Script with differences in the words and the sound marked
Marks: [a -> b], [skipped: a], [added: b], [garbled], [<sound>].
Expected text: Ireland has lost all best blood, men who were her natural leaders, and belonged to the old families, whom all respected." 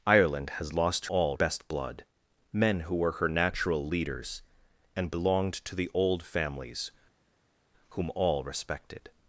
Ireland has lost all best blood, men who were her natural leaders, and belonged to the old families, whom all respected."